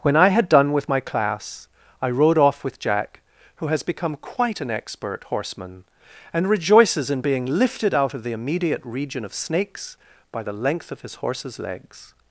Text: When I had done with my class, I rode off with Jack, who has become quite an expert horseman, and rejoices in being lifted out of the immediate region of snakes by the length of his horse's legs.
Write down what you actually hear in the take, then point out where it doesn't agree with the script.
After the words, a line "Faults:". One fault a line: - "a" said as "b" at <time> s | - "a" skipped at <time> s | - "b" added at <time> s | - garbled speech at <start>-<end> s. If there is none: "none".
When I had done with my class, I rode off with Jack, who has become quite an expert horseman, and rejoices in being lifted out of the immediate region of snakes by the length of his horse's legs.
Faults:
none